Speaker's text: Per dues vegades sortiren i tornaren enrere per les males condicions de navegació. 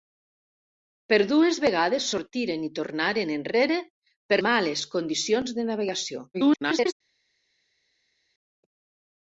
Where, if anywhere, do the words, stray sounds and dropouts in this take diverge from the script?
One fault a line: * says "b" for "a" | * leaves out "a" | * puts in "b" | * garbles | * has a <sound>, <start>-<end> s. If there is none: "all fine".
* leaves out "les"
* garbles